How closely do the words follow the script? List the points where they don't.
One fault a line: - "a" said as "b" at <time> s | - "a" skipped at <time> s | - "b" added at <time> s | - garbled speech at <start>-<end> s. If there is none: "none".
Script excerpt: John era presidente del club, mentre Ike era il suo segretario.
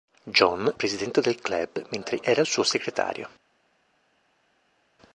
- "era" skipped at 0.7 s
- "Ike" skipped at 2.2 s